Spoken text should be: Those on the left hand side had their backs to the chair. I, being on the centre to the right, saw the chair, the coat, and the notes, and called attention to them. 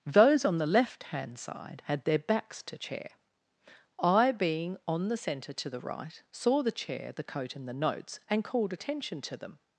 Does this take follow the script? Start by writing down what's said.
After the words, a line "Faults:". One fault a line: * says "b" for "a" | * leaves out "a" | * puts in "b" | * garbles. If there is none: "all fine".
Those on the left hand side had their backs to chair. I, being on the centre to the right, saw the chair, the coat, and the notes, and called attention to them.
Faults:
* leaves out "the"